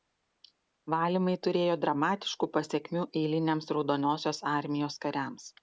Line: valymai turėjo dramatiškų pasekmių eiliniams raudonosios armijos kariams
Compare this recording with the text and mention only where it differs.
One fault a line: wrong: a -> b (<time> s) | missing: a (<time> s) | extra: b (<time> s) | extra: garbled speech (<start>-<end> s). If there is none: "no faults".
no faults